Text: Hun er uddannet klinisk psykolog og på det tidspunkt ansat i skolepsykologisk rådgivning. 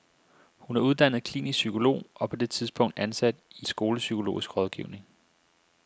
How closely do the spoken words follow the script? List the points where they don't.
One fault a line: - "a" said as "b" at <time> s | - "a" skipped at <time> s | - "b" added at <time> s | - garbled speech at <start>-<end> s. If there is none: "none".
none